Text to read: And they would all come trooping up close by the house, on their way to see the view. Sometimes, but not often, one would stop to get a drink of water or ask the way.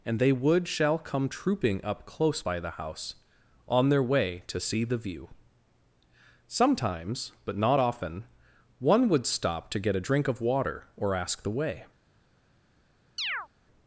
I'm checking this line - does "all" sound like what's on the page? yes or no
no